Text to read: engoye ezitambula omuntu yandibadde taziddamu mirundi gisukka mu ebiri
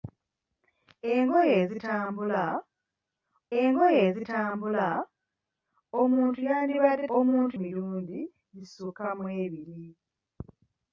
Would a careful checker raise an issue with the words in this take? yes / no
yes